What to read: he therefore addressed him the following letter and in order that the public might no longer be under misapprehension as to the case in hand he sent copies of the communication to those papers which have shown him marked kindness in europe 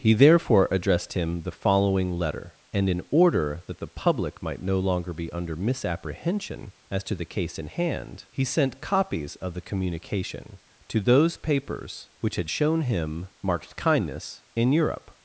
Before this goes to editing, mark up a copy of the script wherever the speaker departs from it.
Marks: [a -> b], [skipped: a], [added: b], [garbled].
he therefore addressed him the following letter and in order that the public might no longer be under misapprehension as to the case in hand he sent copies of the communication to those papers which [have -> had] shown him marked kindness in europe